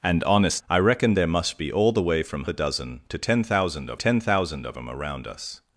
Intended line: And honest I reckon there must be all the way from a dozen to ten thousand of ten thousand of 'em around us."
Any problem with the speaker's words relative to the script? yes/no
no